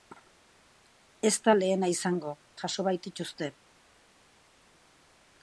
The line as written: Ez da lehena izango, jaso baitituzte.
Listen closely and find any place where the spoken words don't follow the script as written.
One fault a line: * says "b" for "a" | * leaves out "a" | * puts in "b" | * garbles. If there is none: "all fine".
all fine